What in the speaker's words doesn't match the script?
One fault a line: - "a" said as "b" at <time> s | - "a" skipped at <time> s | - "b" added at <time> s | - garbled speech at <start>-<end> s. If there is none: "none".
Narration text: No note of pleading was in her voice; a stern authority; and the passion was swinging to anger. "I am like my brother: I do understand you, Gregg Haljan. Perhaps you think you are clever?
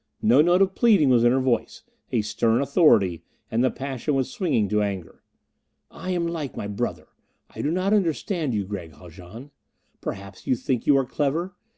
- "not" added at 7.7 s